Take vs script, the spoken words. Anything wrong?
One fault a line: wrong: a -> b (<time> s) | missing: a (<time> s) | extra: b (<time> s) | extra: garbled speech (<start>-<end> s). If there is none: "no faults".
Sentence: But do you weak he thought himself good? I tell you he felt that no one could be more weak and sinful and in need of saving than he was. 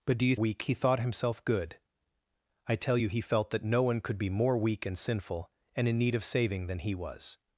no faults